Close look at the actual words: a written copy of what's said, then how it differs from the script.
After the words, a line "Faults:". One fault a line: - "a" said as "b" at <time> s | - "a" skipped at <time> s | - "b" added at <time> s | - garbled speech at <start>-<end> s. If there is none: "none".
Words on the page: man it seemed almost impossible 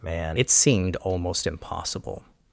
man it seemed almost impossible
Faults:
none